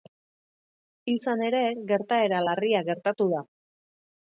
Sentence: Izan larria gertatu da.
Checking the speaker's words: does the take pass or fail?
fail